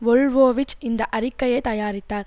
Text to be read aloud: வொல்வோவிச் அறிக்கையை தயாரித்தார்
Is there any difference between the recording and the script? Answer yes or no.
yes